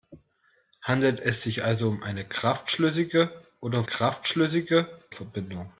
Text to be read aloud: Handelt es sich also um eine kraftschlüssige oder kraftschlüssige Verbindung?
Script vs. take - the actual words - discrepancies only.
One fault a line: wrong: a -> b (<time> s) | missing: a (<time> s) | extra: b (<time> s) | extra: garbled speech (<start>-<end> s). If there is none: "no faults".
no faults